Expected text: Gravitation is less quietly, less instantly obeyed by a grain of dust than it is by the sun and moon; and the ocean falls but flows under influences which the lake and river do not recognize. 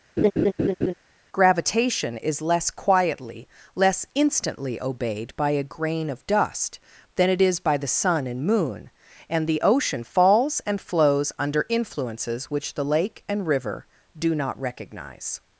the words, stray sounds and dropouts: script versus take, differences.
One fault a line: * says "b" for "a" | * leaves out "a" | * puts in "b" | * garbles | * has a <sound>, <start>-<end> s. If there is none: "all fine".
* has a laugh, 0.2-0.9 s
* says "and" for "but"